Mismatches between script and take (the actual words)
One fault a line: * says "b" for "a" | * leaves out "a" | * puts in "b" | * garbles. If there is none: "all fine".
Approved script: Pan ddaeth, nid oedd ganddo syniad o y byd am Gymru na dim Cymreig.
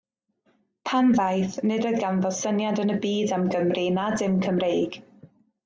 * says "yn" for "o"